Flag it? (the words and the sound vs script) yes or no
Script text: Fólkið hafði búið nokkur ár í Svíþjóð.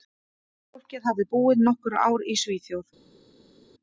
no